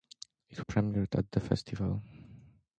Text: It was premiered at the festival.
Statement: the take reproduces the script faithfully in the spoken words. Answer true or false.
false